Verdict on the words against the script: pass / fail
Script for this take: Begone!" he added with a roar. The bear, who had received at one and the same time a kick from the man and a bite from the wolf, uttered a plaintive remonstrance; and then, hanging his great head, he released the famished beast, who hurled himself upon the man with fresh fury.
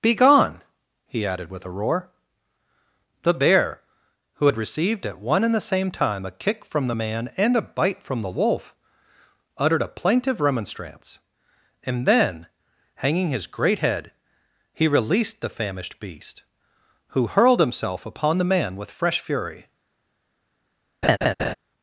pass